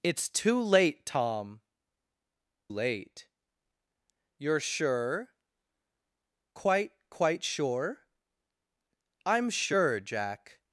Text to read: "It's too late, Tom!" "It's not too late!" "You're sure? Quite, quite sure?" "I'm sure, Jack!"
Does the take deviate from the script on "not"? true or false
true